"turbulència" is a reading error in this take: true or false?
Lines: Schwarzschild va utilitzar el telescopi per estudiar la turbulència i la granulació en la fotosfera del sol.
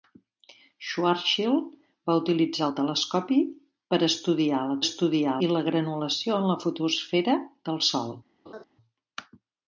true